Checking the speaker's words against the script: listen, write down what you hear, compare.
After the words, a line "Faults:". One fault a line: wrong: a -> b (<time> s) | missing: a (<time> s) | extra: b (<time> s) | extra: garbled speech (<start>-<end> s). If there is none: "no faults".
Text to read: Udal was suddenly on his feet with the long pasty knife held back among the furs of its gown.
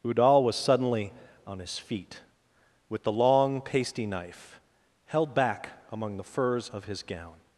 Udal was suddenly on his feet with the long pasty knife held back among the furs of his gown.
Faults:
wrong: its -> his (6.8 s)